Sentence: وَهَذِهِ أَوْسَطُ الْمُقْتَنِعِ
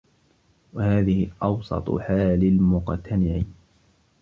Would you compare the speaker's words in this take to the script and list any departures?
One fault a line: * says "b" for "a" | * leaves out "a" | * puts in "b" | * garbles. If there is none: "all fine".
* puts in "حَالِ"